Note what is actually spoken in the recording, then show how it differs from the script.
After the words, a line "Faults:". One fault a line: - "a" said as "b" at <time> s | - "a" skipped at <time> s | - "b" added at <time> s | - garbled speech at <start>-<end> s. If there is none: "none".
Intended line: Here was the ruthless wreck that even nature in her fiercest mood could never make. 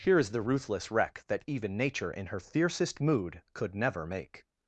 Here is the ruthless wreck that even nature in her fiercest mood could never make.
Faults:
- "was" said as "is" at 0.2 s